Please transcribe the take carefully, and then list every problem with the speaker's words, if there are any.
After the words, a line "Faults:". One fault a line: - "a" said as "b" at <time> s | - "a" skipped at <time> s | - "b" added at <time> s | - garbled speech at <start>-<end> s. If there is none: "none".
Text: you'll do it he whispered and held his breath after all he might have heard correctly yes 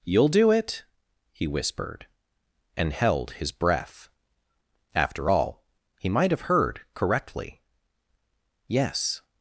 you'll do it he whispered and held his breath after all he might have heard correctly yes
Faults:
none